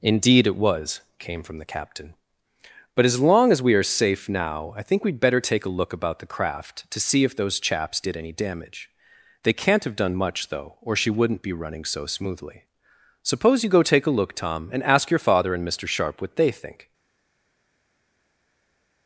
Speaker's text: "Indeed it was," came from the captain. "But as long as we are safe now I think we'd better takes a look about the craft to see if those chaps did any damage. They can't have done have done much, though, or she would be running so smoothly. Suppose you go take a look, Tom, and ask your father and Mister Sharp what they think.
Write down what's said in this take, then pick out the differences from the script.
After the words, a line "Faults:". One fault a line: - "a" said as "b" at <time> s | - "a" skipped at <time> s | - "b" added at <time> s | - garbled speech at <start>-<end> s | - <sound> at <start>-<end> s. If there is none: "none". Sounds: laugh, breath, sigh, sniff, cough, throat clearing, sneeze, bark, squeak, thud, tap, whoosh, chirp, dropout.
"Indeed it was," came from the captain. "But as long as we are safe now I think we'd better take a look about the craft to see if those chaps did any damage. They can't have done much, though, or she wouldn't be running so smoothly. Suppose you go take a look, Tom, and ask your father and Mister Sharp what they think.
Faults:
- "takes" said as "take" at 5.4 s
- "have done" skipped at 10.2 s
- "would" said as "wouldn't" at 11.1 s